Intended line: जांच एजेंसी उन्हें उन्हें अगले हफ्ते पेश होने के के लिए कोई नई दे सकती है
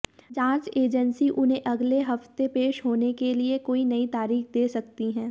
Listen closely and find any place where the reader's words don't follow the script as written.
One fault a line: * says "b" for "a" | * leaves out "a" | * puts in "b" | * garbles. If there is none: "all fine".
* leaves out "उन्हें"
* leaves out "के"
* puts in "तारीख"